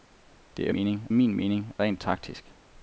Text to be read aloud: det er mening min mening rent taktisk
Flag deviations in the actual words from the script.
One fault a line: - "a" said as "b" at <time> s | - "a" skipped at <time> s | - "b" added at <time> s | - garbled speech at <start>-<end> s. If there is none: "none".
none